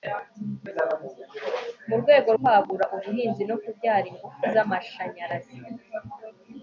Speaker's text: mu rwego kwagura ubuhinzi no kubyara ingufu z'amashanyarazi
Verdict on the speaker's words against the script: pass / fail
pass